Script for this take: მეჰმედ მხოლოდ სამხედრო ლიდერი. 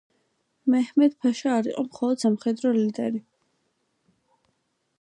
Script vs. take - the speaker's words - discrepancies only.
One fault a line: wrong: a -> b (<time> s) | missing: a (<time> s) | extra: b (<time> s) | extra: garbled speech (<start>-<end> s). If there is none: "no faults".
extra: ფაშა არ იყო (1.2 s)